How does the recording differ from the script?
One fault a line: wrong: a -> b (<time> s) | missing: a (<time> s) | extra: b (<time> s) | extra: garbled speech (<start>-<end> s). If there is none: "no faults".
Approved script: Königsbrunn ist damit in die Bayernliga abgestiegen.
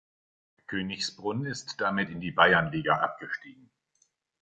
no faults